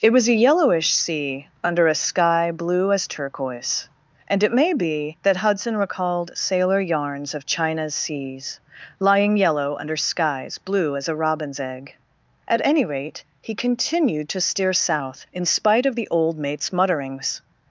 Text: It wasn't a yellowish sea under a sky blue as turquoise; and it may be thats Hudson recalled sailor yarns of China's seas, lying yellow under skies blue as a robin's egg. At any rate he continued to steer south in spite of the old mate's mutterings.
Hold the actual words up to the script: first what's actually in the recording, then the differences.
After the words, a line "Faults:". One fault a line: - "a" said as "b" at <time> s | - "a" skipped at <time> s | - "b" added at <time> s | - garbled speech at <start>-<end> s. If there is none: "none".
It was a yellowish sea under a sky blue as turquoise; and it may be that Hudson recalled sailor yarns of China's seas, lying yellow under skies blue as a robin's egg. At any rate he continued to steer south in spite of the old mate's mutterings.
Faults:
- "wasn't" said as "was" at 0.1 s
- "thats" said as "that" at 5.2 s